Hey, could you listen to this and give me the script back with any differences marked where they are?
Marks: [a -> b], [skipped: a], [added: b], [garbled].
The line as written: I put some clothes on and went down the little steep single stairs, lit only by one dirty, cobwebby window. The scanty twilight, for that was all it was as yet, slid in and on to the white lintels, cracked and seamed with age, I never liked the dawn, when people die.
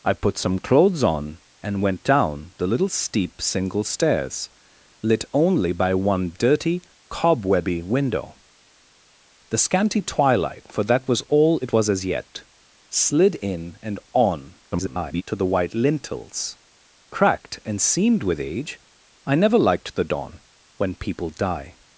I put some clothes on and went down the little steep single stairs, lit only by one dirty, cobwebby window. The scanty twilight, for that was all it was as yet, slid in and on [garbled] to the white lintels, cracked and seamed with age, I never liked the dawn, when people die.